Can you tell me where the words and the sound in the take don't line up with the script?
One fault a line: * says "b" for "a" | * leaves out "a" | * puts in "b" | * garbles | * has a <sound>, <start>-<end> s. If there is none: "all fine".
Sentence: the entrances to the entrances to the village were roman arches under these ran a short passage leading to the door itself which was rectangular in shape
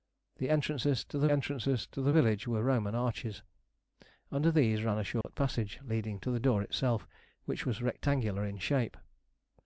* has a dropout, 5.2-5.2 s